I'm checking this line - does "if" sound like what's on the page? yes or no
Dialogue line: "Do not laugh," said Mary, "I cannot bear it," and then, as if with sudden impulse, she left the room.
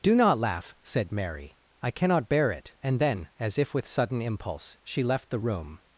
yes